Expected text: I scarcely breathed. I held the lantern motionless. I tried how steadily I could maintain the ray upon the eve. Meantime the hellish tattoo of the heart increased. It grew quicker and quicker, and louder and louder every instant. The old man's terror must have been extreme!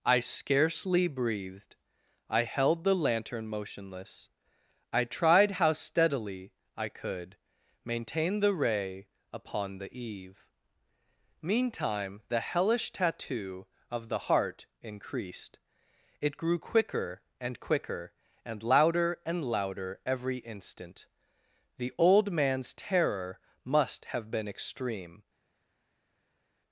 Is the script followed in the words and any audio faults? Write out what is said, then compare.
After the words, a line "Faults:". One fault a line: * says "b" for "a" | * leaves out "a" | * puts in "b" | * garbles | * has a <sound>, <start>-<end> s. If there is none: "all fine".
I scarcely breathed. I held the lantern motionless. I tried how steadily I could maintain the ray upon the eve. Meantime the hellish tattoo of the heart increased. It grew quicker and quicker, and louder and louder every instant. The old man's terror must have been extreme!
Faults:
all fine